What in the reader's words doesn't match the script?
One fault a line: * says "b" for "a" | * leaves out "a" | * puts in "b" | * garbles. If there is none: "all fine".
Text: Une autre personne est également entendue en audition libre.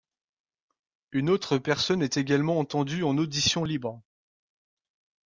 all fine